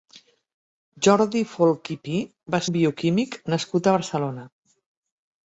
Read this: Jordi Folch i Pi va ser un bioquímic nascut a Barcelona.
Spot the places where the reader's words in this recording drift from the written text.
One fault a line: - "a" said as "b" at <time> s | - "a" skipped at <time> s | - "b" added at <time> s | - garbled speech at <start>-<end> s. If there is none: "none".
- "ser" skipped at 2.6 s